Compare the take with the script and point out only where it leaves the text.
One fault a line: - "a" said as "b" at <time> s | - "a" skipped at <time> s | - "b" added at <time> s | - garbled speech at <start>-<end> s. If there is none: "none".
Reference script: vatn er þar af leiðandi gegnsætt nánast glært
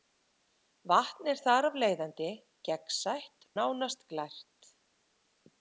none